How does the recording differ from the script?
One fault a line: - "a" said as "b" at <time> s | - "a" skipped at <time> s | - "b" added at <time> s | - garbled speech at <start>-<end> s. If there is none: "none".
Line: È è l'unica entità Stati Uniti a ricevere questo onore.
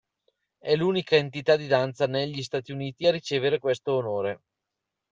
- "è" skipped at 0.8 s
- "di danza negli" added at 1.6 s